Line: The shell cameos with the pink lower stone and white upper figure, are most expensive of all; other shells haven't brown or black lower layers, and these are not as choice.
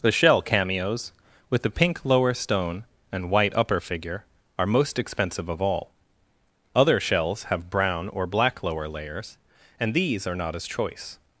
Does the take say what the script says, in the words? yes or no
no